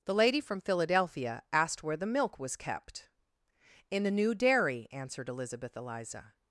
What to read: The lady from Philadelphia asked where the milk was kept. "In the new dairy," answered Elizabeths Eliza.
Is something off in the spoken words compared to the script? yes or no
yes